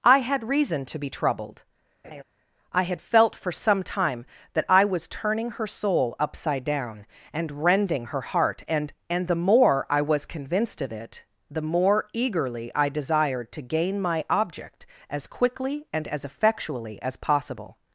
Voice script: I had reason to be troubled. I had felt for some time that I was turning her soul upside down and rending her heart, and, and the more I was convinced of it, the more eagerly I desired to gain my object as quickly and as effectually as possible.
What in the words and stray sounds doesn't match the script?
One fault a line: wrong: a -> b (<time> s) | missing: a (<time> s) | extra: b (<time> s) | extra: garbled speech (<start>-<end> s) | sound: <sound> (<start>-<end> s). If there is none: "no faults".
sound: laugh (2.0-2.2 s)